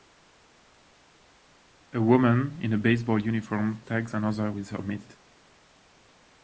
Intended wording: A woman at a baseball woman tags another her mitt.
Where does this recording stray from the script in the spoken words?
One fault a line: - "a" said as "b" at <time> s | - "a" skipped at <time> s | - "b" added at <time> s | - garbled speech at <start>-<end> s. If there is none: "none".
- "at" said as "in" at 2.6 s
- "woman" said as "uniform" at 3.2 s
- "with" added at 4.5 s